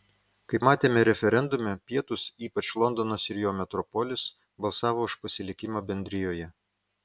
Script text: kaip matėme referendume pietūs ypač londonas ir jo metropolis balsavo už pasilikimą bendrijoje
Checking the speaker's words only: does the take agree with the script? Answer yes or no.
yes